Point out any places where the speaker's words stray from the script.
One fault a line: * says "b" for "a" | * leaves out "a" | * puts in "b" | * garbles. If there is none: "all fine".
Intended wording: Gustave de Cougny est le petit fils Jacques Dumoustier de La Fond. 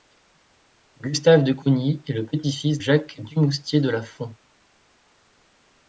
all fine